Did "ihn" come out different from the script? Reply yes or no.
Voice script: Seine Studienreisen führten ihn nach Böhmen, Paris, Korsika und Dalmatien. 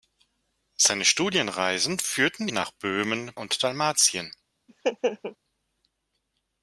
yes